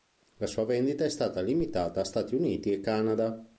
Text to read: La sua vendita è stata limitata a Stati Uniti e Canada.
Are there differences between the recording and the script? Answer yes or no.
no